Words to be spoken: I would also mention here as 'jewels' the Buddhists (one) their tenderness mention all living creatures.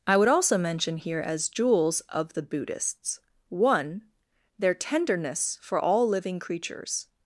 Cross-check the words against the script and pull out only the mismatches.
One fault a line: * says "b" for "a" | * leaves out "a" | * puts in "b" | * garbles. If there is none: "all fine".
* puts in "of"
* says "for" for "mention"